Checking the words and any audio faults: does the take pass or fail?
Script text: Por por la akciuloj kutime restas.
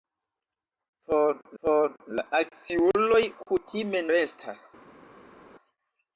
pass